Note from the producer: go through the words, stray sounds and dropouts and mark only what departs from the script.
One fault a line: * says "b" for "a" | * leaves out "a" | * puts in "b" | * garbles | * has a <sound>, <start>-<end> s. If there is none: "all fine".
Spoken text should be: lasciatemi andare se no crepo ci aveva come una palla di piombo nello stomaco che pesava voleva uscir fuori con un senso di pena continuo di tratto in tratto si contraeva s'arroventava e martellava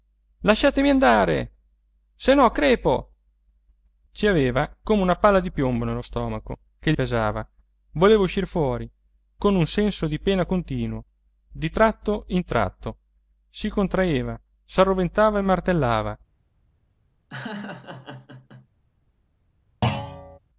* has a laugh, 17.3-18.7 s
* has a thud, 19.8-20.4 s